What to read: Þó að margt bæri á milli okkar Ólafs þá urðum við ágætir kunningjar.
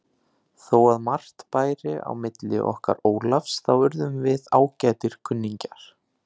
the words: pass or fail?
pass